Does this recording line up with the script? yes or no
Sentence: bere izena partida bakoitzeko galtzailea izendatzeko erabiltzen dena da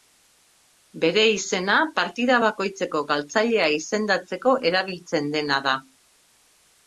yes